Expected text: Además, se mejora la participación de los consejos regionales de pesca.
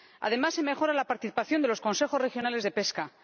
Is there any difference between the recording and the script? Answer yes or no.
no